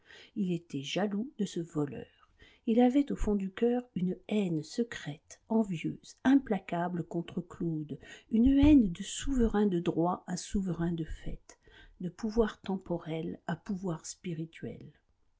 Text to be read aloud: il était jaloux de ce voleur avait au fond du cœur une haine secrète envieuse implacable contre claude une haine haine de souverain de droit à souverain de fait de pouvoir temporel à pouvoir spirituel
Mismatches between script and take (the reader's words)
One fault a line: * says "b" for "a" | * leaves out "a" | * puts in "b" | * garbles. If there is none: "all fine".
* puts in "il"
* leaves out "haine"